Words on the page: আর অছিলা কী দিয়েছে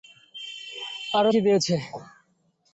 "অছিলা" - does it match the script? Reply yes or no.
no